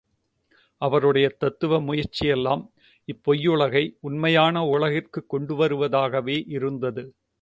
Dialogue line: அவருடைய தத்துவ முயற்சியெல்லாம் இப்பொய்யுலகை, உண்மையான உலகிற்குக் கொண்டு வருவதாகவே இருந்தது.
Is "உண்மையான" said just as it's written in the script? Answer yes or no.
yes